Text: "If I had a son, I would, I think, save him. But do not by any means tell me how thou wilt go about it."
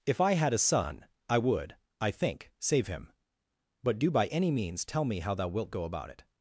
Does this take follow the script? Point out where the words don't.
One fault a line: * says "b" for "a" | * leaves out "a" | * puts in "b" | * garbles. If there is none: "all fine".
* leaves out "not"